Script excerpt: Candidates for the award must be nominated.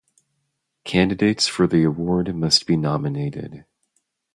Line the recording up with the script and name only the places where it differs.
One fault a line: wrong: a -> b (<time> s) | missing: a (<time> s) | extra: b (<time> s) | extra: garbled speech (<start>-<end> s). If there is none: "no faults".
no faults